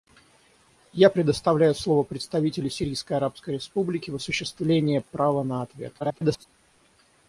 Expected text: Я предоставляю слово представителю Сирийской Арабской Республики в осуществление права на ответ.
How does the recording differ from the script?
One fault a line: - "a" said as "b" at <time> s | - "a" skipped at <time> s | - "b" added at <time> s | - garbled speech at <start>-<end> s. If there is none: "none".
- garbled speech at 6.0-6.5 s